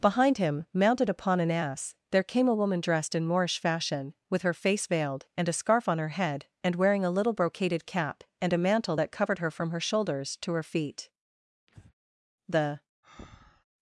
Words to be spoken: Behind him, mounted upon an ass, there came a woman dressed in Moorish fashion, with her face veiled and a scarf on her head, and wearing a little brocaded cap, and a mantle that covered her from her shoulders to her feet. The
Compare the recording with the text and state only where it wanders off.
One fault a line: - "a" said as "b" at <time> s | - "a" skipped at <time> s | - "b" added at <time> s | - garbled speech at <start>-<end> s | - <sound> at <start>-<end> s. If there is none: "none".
- breath at 11.7-11.9 s
- breath at 13.0-13.6 s